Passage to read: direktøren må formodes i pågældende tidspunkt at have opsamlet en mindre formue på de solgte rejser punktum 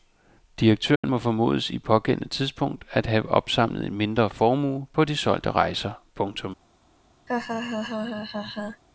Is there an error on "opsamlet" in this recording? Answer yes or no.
no